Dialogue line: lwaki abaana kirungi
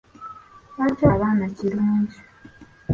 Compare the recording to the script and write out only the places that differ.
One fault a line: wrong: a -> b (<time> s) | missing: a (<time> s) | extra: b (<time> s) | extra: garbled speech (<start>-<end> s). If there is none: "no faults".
no faults